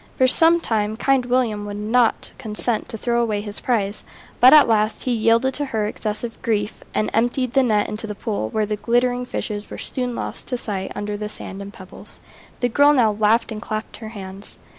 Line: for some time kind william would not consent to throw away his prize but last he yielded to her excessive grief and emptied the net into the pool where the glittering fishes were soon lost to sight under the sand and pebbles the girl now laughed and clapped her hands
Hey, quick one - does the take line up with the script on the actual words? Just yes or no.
no